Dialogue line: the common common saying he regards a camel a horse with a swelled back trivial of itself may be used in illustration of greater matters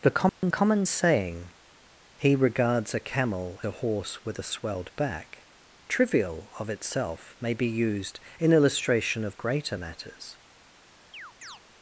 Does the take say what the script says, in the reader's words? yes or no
yes